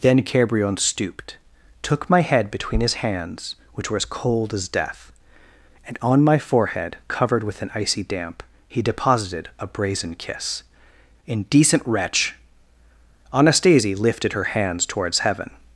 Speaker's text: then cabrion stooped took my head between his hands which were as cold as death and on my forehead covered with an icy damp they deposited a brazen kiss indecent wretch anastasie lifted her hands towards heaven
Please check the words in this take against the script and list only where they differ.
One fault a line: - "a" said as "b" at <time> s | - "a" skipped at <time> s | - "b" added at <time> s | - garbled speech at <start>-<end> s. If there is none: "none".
- "they" said as "he" at 8.7 s